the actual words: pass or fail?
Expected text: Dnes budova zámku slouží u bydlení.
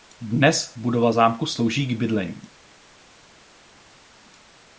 fail